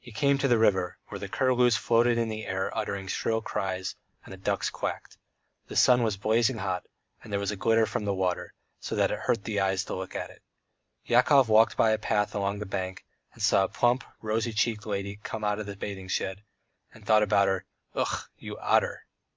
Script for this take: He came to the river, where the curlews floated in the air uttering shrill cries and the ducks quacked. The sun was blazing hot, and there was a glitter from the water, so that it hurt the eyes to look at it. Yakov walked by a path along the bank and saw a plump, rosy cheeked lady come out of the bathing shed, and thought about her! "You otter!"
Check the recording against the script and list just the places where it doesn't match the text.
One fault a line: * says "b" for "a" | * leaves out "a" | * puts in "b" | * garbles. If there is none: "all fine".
* puts in "Ugh"